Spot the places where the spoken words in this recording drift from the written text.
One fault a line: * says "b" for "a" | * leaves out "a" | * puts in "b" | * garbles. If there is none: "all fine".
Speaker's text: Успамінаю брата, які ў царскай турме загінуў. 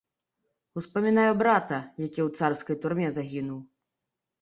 all fine